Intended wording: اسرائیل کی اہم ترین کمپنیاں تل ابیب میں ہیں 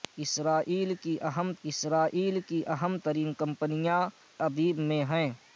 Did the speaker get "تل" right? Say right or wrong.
wrong